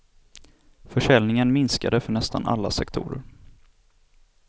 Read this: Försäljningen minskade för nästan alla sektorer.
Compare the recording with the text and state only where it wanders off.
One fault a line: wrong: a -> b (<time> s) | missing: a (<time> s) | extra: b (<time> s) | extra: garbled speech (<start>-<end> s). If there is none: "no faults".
no faults